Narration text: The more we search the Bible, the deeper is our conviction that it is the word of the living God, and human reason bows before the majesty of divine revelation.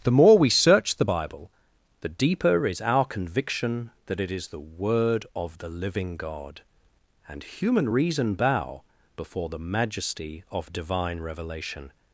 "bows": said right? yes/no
no